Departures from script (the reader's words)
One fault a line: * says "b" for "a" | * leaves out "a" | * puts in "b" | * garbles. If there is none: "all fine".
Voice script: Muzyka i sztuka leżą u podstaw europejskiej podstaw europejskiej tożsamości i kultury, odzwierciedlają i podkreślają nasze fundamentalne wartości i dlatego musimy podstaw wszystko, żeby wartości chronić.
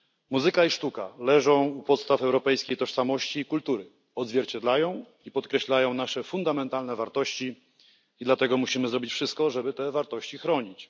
* leaves out "podstaw europejskiej"
* says "zrobić" for "podstaw"
* puts in "te"